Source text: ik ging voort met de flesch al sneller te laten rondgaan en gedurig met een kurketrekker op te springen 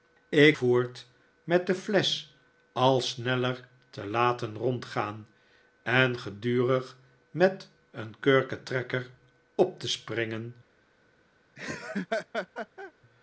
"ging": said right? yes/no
no